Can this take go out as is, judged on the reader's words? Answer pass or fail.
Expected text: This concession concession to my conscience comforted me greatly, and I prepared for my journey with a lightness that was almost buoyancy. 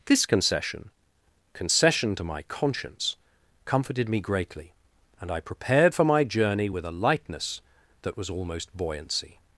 pass